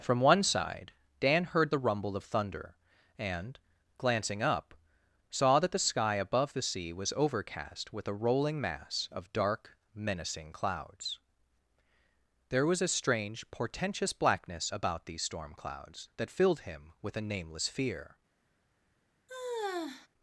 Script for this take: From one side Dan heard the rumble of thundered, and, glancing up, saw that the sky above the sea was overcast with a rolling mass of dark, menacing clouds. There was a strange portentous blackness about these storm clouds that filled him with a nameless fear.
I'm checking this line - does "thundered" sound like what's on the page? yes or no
no